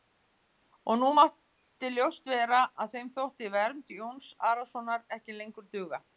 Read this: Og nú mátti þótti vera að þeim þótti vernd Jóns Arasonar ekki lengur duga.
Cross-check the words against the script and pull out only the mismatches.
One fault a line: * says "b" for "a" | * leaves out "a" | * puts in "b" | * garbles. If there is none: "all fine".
* says "ljóst" for "þótti"